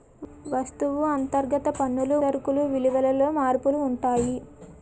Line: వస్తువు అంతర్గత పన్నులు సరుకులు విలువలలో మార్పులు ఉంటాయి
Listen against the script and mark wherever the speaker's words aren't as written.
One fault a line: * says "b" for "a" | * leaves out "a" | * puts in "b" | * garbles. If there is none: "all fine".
all fine